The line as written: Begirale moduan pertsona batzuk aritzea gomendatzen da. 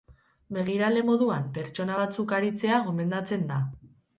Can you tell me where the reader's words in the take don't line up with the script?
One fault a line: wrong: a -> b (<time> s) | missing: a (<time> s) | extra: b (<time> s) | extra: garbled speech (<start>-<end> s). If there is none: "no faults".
no faults